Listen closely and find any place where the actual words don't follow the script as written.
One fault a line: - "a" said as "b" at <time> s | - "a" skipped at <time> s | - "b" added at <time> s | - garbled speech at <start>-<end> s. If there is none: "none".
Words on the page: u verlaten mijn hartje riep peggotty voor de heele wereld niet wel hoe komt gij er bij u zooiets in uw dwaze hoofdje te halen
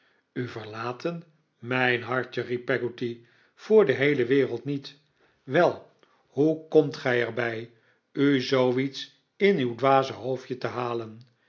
none